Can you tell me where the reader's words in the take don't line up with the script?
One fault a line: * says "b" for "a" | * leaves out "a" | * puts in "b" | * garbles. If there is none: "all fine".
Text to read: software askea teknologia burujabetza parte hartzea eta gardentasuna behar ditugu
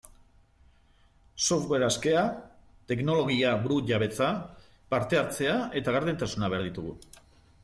all fine